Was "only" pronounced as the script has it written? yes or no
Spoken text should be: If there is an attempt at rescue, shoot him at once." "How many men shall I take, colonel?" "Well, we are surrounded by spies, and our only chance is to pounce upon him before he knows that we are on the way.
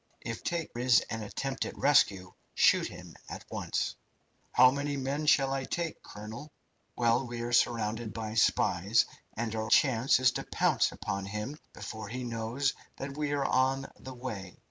no